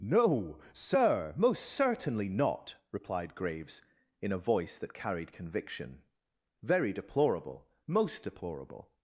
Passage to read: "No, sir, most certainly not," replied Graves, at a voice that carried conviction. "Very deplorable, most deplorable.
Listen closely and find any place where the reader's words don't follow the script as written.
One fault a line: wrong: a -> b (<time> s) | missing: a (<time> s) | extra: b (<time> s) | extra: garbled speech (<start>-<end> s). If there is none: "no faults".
wrong: at -> in (4.2 s)